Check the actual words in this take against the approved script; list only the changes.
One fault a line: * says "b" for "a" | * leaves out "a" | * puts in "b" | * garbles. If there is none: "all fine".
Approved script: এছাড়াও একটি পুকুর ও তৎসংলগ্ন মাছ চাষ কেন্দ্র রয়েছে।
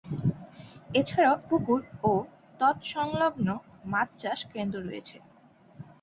* leaves out "একটি"